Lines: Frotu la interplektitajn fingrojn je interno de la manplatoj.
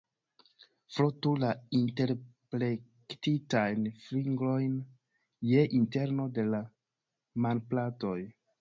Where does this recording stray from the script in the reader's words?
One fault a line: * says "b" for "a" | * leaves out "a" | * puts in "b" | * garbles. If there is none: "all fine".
all fine